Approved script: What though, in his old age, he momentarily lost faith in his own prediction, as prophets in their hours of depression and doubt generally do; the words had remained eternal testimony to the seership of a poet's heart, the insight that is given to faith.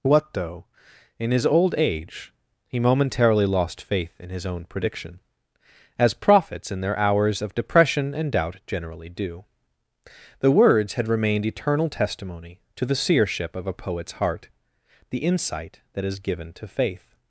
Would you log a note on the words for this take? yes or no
no